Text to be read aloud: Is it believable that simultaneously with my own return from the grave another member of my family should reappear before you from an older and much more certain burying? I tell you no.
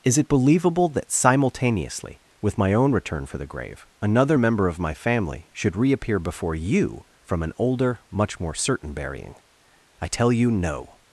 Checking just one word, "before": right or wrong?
right